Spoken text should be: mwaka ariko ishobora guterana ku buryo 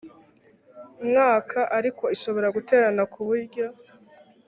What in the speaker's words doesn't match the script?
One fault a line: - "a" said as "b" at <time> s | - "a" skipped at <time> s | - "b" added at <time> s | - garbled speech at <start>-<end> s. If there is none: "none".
none